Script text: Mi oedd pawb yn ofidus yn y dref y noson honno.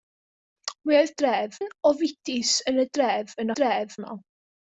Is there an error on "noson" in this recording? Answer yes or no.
yes